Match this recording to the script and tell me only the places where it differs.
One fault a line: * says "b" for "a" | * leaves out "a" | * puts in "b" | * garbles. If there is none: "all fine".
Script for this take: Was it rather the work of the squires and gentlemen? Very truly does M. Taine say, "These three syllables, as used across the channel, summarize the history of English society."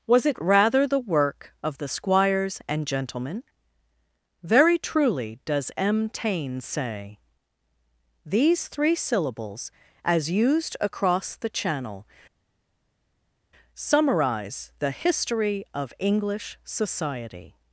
all fine